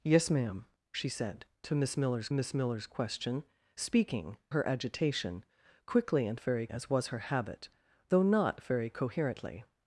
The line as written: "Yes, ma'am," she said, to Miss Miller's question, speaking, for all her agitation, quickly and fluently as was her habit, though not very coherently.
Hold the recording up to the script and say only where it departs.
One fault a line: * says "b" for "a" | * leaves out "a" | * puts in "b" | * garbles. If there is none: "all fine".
* puts in "Miss Miller's"
* leaves out "for all"
* says "very" for "fluently"